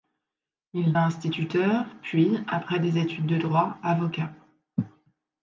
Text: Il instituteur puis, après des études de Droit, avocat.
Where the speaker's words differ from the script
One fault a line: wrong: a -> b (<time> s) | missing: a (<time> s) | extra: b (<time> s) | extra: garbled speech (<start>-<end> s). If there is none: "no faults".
no faults